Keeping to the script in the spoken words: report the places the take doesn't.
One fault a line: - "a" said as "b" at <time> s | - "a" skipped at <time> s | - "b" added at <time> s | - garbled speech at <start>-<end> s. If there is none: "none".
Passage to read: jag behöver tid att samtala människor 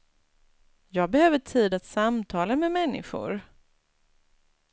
- "med" added at 2.6 s